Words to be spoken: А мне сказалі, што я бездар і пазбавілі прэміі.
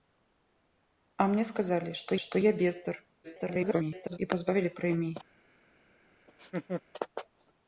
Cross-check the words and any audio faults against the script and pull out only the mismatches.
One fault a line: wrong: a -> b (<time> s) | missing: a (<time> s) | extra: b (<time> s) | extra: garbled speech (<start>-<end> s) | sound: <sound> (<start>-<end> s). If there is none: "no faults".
extra: што (2.2 s)
extra: garbled speech (3.2-4.2 s)
sound: laugh (6.3-6.8 s)